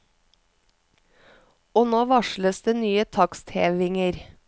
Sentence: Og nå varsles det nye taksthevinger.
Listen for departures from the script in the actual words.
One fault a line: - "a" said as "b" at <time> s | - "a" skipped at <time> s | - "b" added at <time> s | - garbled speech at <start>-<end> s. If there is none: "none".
none